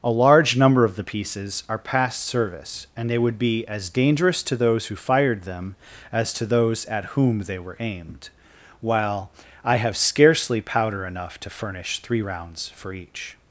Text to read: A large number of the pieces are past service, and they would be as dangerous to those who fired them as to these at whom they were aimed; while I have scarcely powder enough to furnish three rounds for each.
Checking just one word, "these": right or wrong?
wrong